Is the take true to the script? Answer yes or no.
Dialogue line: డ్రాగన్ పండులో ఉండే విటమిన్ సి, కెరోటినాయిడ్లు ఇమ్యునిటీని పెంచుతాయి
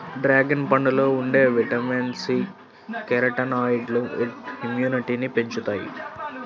yes